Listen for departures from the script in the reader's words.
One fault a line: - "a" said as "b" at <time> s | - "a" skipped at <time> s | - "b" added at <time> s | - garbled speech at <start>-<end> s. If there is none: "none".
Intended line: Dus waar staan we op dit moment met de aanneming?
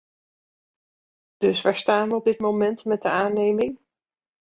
none